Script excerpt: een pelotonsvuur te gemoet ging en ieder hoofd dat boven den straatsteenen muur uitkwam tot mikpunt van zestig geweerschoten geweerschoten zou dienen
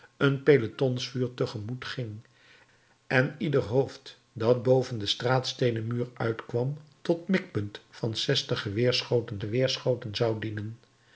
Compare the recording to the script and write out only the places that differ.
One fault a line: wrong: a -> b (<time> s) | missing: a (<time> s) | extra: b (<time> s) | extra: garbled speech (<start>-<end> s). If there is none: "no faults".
no faults